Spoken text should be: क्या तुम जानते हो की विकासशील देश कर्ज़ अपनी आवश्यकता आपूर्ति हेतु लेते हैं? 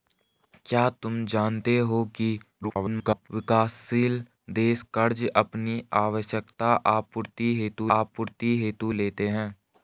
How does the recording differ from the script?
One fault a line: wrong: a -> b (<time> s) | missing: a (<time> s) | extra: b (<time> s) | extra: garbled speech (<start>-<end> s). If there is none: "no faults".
extra: garbled speech (2.6-3.3 s)
extra: आपूर्ति हेतु (8.0 s)